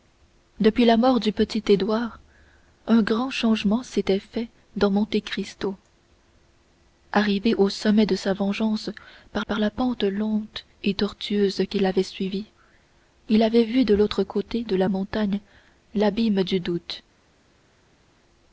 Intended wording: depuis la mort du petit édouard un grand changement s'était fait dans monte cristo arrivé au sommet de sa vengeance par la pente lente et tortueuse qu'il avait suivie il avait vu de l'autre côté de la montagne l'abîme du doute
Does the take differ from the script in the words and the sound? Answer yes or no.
yes